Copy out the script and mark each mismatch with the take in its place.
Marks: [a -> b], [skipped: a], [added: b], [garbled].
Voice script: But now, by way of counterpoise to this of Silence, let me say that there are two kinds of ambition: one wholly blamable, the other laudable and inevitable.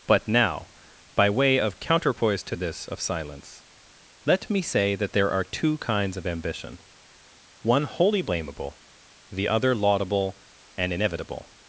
But now, by way of counterpoise to this of Silence, let me say that there are two kinds of ambition: one wholly blamable, the other laudable and inevitable.